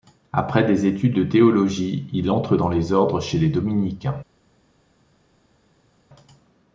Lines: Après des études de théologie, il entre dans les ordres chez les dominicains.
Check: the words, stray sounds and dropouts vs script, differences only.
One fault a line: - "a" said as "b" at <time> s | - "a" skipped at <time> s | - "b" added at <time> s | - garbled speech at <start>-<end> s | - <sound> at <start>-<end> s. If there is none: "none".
none